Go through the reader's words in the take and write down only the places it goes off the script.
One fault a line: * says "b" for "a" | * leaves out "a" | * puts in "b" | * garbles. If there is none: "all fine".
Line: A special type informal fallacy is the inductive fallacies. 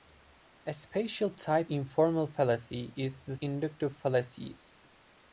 all fine